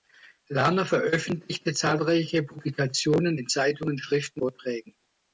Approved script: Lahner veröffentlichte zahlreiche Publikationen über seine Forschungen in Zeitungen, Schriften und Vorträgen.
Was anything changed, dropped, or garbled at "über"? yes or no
yes